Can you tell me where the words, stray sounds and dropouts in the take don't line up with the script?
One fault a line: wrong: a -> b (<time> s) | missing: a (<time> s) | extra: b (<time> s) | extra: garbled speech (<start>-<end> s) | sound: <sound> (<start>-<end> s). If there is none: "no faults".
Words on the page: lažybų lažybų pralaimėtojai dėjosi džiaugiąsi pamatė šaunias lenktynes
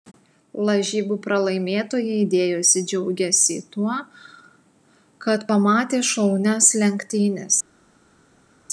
missing: lažybų (1.2 s)
extra: tuo kad (3.7 s)